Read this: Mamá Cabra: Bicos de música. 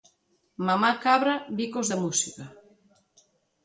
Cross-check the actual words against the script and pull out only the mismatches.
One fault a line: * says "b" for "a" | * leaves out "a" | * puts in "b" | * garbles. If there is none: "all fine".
all fine